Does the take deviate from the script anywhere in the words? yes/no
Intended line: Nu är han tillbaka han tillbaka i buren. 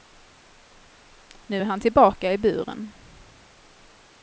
yes